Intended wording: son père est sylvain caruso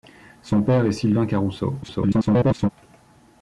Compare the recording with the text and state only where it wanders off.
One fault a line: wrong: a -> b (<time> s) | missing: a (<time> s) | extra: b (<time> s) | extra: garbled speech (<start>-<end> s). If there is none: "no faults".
extra: garbled speech (1.8-2.7 s)